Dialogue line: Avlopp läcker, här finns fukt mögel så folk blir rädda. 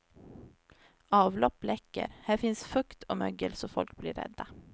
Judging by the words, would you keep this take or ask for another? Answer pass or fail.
fail